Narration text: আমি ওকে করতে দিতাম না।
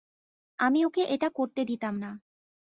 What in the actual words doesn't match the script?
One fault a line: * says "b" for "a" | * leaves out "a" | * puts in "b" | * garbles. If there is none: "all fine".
* puts in "এটা"